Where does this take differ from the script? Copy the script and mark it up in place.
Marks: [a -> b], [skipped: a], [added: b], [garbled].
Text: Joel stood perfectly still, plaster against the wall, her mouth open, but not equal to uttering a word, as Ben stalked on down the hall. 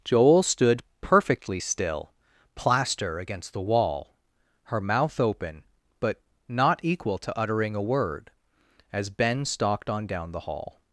Joel stood perfectly still, plaster against the wall, her mouth open, but not equal to uttering a word, as Ben stalked on down the hall.